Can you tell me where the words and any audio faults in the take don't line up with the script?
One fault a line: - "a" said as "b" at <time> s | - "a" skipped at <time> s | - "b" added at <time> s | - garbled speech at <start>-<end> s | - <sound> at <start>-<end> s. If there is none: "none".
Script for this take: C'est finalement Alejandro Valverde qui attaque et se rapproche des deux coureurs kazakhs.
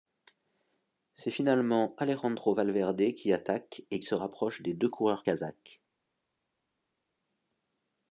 none